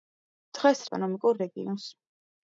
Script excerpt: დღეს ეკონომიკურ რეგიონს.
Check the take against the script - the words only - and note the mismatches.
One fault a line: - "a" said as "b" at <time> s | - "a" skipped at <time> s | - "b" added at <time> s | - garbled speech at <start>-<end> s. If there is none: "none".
none